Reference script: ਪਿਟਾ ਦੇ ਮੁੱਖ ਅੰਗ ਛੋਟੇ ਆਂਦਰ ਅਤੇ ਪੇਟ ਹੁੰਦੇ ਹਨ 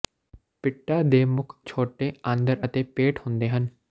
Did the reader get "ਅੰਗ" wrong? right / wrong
wrong